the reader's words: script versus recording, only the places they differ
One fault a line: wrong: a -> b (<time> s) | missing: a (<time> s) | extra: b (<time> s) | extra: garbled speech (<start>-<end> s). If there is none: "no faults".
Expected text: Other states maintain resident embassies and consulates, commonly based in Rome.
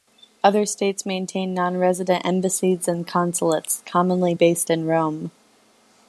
extra: non (1.5 s)